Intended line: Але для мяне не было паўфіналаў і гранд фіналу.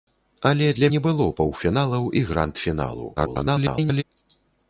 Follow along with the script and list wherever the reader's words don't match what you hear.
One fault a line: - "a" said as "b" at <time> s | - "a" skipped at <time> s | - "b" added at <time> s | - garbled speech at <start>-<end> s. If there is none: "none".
- "мяне" skipped at 0.9 s
- garbled speech at 3.2-4.0 s